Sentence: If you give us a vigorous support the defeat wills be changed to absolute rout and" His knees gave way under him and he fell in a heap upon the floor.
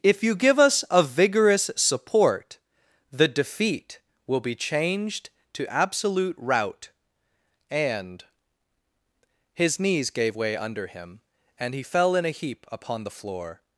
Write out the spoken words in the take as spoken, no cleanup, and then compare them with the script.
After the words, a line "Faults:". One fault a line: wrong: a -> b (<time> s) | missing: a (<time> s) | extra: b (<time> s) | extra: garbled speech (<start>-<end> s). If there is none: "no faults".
If you give us a vigorous support the defeat will be changed to absolute rout and" His knees gave way under him and he fell in a heap upon the floor.
Faults:
wrong: wills -> will (4.2 s)